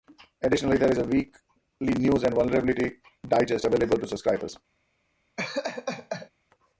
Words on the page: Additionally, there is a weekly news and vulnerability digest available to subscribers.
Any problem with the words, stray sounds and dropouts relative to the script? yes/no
yes